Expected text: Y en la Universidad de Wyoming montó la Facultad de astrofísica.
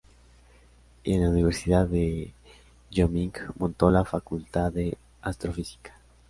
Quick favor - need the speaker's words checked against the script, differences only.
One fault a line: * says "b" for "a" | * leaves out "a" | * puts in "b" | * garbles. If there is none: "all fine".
all fine